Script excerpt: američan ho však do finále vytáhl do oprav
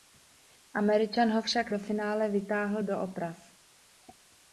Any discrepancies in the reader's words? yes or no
no